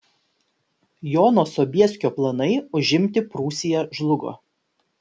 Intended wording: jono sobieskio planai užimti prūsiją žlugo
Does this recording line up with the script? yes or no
yes